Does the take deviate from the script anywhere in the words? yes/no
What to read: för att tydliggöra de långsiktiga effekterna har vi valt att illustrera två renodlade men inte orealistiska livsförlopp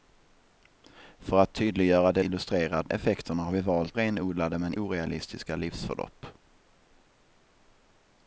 yes